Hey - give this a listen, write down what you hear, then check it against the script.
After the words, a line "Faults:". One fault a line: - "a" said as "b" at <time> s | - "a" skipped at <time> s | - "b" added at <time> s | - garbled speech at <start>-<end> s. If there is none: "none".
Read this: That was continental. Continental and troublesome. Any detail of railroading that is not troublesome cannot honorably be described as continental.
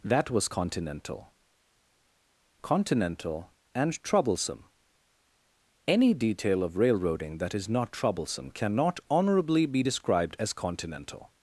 That was continental. Continental and troublesome. Any detail of railroading that is not troublesome cannot honorably be described as continental.
Faults:
none